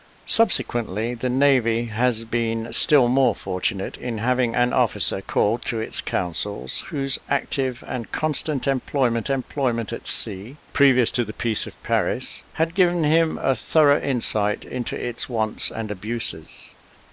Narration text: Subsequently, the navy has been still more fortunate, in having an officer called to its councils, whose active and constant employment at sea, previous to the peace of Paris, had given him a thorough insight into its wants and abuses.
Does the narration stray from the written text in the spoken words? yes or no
yes